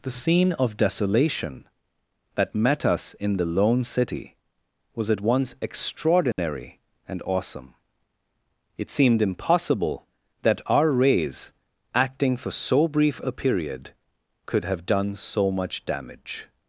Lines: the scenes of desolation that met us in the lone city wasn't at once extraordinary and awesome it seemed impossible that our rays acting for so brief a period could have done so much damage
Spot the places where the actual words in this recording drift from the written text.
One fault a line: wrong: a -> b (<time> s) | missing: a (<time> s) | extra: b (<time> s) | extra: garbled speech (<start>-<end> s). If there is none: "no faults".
wrong: scenes -> scene (0.2 s)
wrong: wasn't -> was (5.0 s)